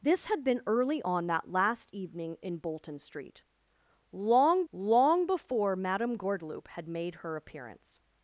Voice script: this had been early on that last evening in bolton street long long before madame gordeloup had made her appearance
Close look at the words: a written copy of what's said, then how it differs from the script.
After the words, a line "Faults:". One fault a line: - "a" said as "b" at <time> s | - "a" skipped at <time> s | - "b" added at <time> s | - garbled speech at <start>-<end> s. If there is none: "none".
this had been early on that last evening in bolton street long long before madame gordeloup had made her appearance
Faults:
none